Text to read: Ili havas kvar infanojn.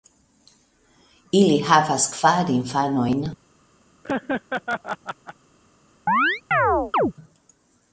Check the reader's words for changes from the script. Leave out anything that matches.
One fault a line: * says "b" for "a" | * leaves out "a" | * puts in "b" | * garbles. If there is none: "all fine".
all fine